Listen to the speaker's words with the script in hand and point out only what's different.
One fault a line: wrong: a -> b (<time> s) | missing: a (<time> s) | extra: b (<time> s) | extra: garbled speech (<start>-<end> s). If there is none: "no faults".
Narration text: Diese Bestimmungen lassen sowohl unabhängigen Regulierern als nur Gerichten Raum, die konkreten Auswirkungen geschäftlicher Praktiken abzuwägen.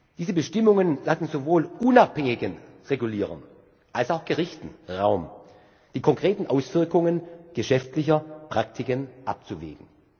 wrong: nur -> auch (4.1 s)